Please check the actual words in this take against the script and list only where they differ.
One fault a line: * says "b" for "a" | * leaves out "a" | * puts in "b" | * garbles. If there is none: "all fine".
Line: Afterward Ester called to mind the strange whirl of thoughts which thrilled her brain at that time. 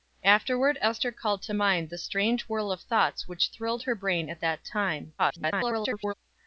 * garbles